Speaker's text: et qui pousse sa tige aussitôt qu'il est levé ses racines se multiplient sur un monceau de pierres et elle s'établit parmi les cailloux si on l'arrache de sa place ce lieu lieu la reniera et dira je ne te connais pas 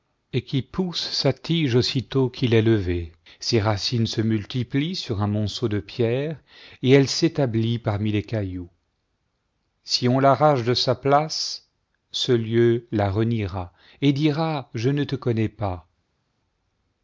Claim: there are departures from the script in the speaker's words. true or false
true